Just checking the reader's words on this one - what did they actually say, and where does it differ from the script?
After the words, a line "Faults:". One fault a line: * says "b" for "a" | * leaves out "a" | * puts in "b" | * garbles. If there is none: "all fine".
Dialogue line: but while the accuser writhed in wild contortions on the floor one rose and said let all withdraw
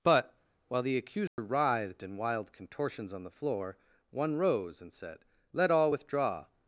but while the accuser writhed in wild contortions on the floor one rose and said let all withdraw
Faults:
all fine